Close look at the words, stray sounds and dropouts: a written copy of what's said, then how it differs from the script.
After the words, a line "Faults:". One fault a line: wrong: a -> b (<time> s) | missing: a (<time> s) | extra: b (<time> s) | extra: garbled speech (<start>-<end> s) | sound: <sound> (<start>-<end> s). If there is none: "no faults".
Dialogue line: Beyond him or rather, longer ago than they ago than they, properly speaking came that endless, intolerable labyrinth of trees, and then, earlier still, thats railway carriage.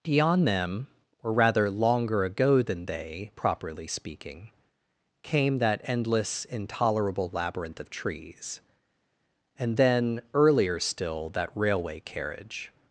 Beyond them or rather, longer ago than they, properly speaking came that endless, intolerable labyrinth of trees, and then, earlier still, that railway carriage.
Faults:
wrong: him -> them (0.5 s)
missing: ago than they (3.3 s)
wrong: thats -> that (11.3 s)